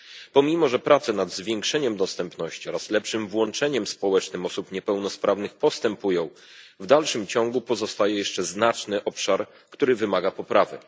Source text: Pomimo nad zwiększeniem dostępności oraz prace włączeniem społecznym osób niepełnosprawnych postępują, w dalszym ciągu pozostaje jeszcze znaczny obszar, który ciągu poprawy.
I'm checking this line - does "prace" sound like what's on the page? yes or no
no